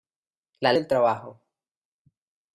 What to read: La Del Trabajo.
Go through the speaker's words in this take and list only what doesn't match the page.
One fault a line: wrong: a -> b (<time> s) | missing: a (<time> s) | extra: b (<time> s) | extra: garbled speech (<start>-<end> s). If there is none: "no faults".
no faults